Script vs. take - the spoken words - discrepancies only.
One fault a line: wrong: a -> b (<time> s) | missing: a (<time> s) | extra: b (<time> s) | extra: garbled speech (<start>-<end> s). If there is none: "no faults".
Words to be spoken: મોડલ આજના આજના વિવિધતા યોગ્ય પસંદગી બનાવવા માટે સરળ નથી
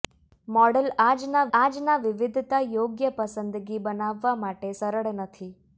no faults